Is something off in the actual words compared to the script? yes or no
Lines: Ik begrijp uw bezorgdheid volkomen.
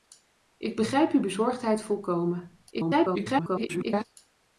yes